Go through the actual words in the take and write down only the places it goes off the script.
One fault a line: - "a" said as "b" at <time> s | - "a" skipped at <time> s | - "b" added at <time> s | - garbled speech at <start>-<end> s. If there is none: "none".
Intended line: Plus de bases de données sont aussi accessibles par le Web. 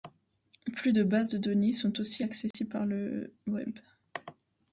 none